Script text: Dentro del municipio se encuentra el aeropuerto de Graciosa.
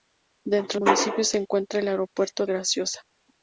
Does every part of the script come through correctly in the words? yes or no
no